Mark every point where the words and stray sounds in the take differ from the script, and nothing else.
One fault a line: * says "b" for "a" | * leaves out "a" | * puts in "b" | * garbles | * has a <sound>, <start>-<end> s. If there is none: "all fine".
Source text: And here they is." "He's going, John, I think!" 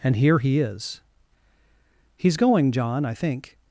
* says "he" for "they"